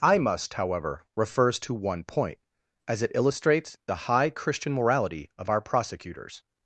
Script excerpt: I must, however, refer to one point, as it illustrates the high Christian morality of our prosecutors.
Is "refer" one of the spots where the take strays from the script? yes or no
yes